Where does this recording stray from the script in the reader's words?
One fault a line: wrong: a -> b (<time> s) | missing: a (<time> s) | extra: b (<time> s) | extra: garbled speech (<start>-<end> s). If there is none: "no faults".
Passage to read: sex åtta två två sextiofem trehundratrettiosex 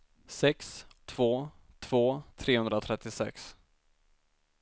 missing: åtta (0.8 s)
missing: sextiofem (2.2 s)